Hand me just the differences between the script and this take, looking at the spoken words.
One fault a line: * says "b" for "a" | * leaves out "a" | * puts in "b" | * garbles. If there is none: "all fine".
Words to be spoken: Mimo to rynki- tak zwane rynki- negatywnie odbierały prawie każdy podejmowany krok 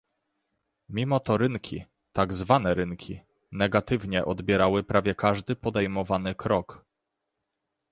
all fine